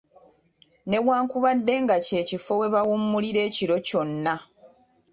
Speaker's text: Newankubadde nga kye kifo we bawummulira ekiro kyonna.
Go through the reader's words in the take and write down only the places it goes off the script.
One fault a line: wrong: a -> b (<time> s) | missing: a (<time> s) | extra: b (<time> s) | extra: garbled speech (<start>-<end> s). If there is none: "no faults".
no faults